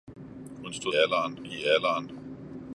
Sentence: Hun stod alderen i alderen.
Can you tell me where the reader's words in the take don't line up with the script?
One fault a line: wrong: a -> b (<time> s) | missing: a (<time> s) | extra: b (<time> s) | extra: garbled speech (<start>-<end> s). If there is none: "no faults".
no faults